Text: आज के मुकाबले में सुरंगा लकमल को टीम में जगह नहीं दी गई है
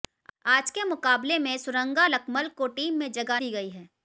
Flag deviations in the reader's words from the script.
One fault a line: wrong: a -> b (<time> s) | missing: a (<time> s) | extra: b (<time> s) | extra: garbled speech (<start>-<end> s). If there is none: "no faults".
missing: नहीं (3.4 s)